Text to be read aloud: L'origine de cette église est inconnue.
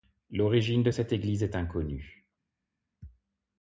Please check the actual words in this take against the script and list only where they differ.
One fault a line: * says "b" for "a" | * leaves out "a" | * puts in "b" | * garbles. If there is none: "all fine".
all fine